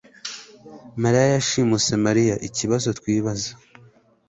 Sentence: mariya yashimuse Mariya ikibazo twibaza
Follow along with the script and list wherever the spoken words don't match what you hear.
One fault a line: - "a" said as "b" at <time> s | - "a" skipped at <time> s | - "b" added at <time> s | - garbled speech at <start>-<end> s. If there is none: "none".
none